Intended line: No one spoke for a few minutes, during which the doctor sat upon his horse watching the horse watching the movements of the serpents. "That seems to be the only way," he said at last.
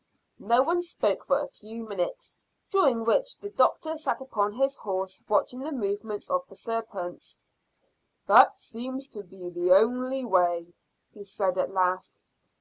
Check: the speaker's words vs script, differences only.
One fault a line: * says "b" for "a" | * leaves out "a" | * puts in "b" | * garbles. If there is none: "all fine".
* leaves out "horse watching the"